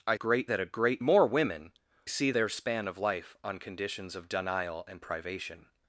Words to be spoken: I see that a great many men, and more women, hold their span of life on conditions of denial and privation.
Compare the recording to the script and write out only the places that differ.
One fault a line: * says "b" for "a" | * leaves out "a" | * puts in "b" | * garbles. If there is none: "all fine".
* says "great" for "see"
* leaves out "many men and"
* says "see" for "hold"